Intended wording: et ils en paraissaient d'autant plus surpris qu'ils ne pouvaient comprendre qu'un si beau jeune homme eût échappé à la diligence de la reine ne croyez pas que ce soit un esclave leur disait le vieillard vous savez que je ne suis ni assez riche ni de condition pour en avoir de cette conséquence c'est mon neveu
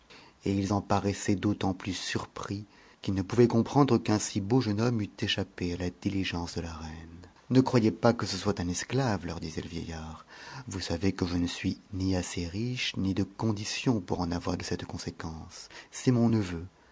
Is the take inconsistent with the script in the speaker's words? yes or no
no